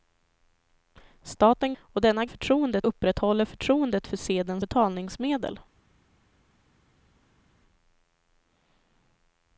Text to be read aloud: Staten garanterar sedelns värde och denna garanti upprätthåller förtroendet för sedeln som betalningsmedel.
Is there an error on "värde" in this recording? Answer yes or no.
yes